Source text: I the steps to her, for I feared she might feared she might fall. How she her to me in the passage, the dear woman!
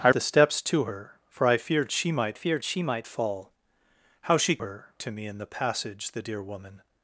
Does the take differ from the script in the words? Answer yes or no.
no